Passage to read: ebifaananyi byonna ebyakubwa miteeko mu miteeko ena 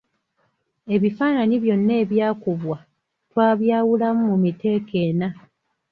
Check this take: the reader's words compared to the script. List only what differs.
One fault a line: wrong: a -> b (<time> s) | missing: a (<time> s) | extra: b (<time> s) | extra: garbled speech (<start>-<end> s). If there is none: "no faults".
wrong: miteeko -> twabyawulamu (3.3 s)